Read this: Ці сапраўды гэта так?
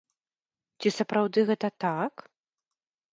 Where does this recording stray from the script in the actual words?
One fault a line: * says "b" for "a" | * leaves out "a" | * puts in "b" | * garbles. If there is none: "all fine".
all fine